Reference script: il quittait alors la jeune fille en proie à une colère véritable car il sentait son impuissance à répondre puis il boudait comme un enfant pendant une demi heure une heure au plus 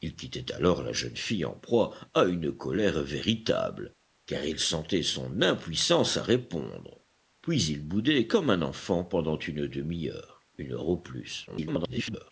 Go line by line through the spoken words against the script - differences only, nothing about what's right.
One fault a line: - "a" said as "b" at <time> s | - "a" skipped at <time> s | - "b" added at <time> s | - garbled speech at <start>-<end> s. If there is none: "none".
- garbled speech at 11.5-12.3 s